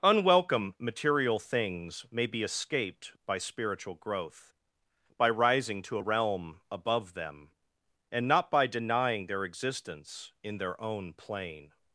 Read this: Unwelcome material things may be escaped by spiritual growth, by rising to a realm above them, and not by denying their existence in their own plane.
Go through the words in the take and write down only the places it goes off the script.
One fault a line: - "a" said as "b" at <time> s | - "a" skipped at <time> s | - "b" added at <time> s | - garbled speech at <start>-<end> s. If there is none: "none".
none